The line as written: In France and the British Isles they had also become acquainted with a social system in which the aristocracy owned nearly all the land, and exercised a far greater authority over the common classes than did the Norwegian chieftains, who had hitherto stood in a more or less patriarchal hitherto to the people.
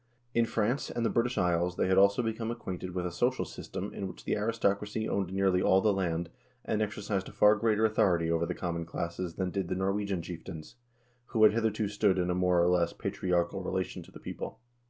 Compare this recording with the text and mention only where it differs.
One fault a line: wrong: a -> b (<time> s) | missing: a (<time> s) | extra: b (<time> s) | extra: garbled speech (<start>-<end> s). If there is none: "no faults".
wrong: hitherto -> relation (13.6 s)